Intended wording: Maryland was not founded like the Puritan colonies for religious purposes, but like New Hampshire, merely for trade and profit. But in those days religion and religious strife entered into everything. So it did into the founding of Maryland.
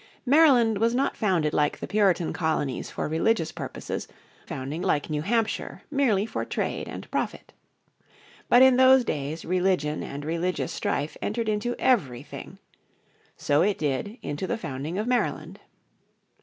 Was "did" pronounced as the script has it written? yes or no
yes